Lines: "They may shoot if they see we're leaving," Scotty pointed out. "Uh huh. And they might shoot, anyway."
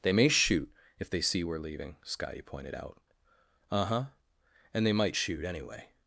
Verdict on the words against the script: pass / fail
pass